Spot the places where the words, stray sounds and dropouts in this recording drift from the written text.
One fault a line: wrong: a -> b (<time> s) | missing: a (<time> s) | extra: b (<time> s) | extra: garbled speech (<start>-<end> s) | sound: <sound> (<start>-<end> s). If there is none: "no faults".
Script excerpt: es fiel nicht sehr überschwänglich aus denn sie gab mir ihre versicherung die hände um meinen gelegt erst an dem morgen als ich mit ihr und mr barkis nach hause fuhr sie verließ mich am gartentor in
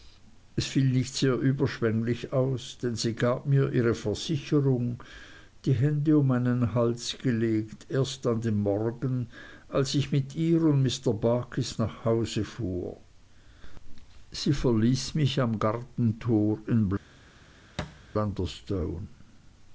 extra: hals (6.7 s)
sound: thud (17.8-18.0 s)